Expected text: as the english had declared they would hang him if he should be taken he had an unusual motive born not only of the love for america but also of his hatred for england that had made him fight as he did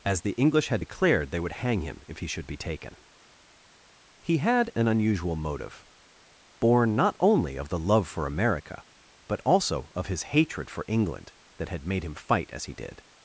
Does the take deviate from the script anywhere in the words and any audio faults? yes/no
no